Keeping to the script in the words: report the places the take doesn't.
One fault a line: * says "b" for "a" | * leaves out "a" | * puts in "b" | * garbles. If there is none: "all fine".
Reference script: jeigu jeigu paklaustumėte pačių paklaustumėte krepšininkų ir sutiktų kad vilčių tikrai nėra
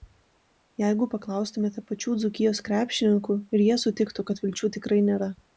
* leaves out "jeigu"
* says "dzūkijos" for "paklaustumėte"
* puts in "jie"